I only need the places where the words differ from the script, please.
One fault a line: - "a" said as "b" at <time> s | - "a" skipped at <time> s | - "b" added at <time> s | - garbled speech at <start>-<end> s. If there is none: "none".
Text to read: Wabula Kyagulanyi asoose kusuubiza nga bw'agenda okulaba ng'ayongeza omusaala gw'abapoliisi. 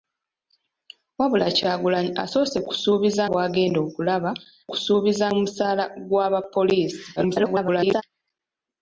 - "nga" skipped at 3.2 s
- "ng'ayongeza" said as "kusuubiza" at 4.7 s
- garbled speech at 7.2-8.0 s